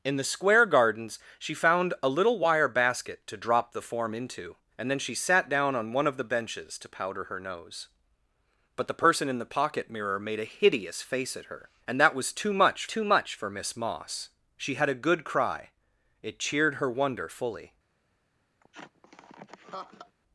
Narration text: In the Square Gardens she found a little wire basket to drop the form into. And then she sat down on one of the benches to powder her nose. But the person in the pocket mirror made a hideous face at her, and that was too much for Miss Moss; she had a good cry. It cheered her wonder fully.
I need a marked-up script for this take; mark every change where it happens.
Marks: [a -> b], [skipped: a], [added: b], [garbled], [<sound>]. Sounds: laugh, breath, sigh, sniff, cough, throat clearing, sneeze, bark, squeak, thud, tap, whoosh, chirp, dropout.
In the Square Gardens she found a little wire basket to drop the form into. And then she sat down on one of the benches to powder her nose. But the person in the pocket mirror made a hideous face at her, and that was too much [added: too much] for Miss Moss; she had a good cry. It cheered her wonder fully. [laugh]